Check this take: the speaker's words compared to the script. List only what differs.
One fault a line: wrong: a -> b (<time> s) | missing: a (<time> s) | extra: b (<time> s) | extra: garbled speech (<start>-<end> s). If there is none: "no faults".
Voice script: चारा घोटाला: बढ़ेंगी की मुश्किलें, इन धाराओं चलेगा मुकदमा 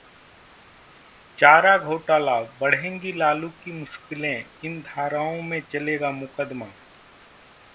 extra: लालू (3.1 s)
extra: में (5.4 s)